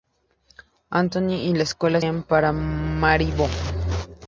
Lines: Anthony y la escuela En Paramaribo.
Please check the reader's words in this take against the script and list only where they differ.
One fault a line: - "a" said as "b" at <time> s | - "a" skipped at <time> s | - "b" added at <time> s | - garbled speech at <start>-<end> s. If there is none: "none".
none